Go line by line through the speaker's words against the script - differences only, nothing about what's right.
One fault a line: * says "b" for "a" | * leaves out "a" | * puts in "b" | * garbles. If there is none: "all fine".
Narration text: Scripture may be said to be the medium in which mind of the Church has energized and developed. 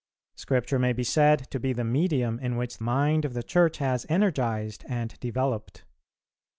all fine